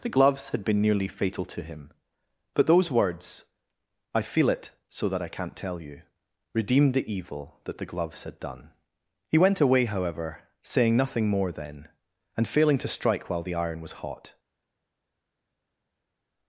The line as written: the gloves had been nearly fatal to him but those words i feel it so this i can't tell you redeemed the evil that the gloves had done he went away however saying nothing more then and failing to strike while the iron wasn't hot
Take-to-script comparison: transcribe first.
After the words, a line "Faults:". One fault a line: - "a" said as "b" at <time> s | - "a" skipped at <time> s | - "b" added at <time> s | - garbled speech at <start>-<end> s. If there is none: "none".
the gloves had been nearly fatal to him but those words i feel it so that i can't tell you redeemed the evil that the gloves had done he went away however saying nothing more then and failing to strike while the iron was hot
Faults:
- "this" said as "that" at 5.1 s
- "wasn't" said as "was" at 13.8 s